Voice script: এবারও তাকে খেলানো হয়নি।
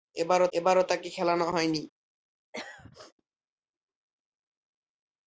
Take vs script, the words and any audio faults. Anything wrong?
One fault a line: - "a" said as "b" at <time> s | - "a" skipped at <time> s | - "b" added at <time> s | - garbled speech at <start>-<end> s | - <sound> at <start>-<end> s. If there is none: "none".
- "এবারও" added at 0.5 s
- throat clearing at 2.5-3.1 s